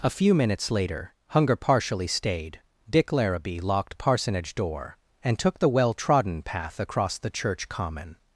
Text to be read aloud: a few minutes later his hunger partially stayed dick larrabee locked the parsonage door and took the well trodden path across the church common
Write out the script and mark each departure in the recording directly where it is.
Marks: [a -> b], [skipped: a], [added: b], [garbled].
a few minutes later [skipped: his] hunger partially stayed dick larrabee locked [skipped: the] parsonage door and took the well trodden path across the church common